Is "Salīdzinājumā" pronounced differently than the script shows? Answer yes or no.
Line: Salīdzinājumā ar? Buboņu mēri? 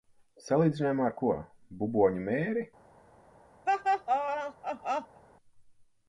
no